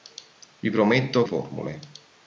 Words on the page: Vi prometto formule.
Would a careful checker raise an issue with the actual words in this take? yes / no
no